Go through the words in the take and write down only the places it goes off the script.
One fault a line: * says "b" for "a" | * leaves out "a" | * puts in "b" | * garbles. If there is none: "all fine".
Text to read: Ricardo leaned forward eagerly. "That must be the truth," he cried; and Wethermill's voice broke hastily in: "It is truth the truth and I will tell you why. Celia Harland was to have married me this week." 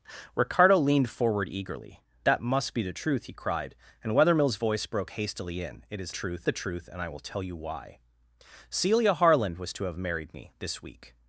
all fine